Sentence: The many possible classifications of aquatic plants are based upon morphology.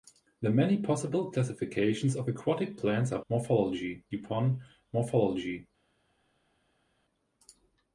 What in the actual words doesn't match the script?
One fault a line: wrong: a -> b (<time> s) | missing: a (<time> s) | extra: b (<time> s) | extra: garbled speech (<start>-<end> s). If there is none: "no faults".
wrong: based -> morphology (3.3 s)